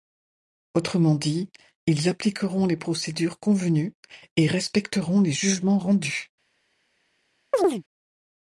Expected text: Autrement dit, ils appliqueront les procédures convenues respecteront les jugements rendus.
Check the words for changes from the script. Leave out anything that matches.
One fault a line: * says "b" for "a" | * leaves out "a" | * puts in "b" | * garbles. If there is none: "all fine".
* puts in "et"